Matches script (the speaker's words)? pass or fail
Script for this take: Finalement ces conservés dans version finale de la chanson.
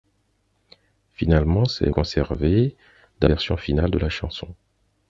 pass